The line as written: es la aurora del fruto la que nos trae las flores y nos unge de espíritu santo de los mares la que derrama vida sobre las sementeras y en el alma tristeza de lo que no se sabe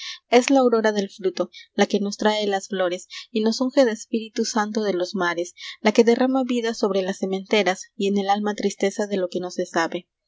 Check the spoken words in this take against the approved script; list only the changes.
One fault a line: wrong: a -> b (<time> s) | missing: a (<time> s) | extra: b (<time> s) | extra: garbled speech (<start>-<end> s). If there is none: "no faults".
no faults